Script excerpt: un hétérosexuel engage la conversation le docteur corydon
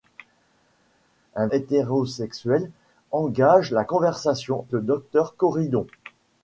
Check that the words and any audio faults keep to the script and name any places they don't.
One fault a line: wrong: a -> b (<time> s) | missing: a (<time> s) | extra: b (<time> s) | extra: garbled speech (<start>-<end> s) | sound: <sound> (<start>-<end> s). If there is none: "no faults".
no faults